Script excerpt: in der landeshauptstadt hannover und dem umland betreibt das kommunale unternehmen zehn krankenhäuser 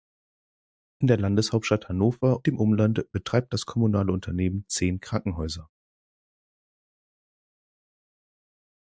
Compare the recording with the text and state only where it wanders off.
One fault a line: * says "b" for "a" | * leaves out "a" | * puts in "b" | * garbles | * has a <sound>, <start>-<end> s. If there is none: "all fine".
* leaves out "und"